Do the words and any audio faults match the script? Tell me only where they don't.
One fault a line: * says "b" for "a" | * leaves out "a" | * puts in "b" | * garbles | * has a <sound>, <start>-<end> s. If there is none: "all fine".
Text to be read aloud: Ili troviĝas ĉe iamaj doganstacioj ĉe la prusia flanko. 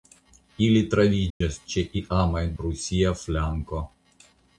* has a dropout, 1.3-1.4 s
* leaves out "doganstacioj ĉe la"